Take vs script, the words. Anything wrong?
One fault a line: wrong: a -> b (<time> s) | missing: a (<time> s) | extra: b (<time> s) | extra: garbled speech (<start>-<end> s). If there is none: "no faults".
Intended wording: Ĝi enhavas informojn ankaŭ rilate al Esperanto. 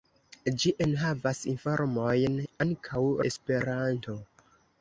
missing: rilate al (3.0 s)